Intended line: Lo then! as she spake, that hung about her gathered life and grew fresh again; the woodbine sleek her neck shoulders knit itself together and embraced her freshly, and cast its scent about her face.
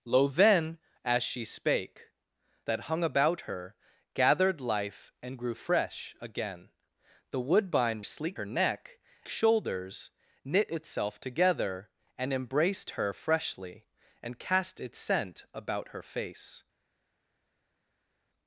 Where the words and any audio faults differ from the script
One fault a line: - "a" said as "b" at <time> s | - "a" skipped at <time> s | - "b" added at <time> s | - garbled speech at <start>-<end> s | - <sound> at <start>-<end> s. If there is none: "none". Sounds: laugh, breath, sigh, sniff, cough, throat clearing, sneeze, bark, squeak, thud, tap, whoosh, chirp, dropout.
none